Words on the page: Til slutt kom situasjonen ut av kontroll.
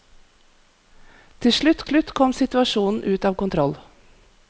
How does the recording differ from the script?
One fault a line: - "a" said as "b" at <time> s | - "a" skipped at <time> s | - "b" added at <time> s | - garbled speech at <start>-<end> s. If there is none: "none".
- "slutt" added at 1.8 s